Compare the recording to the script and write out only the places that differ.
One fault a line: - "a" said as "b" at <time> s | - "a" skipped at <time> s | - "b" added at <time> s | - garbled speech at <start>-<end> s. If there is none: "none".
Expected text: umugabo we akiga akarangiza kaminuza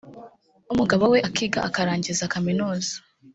none